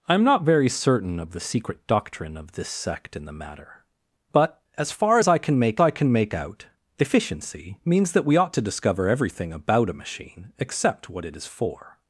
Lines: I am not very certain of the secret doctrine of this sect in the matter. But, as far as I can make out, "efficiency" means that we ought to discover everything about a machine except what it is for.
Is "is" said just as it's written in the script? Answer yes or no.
yes